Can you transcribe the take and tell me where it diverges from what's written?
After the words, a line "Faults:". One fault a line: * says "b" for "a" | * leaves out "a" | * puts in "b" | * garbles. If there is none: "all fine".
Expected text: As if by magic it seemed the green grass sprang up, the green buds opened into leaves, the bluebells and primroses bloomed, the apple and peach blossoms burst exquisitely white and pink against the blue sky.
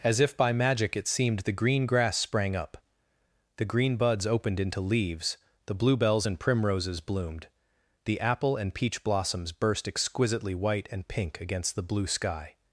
As if by magic it seemed the green grass sprang up, the green buds opened into leaves, the bluebells and primroses bloomed, the apple and peach blossoms burst exquisitely white and pink against the blue sky.
Faults:
all fine